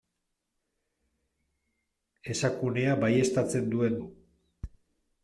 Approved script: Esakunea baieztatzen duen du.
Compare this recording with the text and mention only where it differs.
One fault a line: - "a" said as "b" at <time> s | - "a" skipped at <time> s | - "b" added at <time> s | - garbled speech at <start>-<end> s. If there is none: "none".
none